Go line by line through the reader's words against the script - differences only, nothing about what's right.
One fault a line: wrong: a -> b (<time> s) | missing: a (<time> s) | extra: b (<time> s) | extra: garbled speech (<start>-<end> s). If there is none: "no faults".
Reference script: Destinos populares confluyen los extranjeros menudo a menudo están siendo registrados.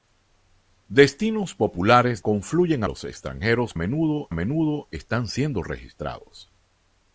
no faults